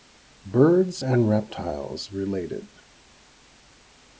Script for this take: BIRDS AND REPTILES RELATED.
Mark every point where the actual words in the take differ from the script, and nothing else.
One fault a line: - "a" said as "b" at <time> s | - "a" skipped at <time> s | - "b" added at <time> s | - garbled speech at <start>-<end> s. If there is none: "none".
none